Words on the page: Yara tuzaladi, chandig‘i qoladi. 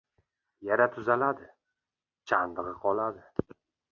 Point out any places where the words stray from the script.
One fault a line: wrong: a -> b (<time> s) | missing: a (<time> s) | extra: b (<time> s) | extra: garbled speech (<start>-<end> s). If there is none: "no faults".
no faults